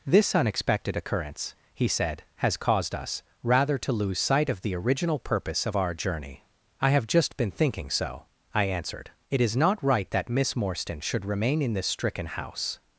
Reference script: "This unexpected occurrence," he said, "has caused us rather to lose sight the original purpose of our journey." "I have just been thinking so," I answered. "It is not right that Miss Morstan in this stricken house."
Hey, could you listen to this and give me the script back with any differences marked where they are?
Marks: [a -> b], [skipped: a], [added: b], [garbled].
"This unexpected occurrence," he said, "has caused us rather to lose sight [added: of] the original purpose of our journey." "I have just been thinking so," I answered. "It is not right that Miss Morstan [added: should remain] in this stricken house."